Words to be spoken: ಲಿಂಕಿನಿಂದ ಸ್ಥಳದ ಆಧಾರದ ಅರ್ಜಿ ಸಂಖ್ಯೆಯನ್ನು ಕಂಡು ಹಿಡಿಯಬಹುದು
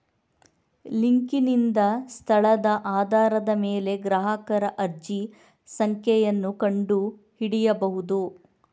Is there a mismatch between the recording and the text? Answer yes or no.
yes